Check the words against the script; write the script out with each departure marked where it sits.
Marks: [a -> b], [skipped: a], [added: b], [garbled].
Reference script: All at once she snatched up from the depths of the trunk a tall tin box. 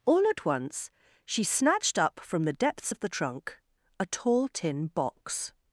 All at once she snatched up from the depths of the trunk a tall tin box.